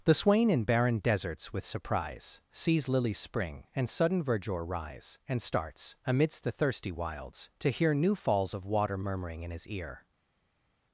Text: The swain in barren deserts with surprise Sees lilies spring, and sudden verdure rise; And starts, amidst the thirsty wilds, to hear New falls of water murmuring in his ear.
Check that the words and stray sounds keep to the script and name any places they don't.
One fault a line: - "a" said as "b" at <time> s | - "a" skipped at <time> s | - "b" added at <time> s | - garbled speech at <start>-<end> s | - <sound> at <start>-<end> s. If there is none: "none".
none